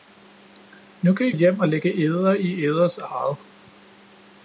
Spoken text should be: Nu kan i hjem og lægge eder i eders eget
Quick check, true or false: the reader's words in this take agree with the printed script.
true